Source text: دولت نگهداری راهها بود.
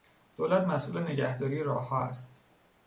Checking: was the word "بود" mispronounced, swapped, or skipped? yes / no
yes